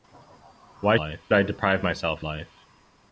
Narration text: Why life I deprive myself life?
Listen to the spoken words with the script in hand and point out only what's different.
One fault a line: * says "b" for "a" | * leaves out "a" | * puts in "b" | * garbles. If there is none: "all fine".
all fine